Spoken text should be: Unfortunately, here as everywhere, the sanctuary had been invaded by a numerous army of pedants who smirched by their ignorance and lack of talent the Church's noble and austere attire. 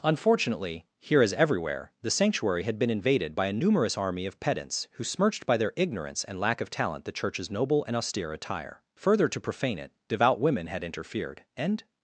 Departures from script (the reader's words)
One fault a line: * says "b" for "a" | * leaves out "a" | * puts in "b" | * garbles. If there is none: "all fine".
* puts in "Further to profane it devout women had interfered and"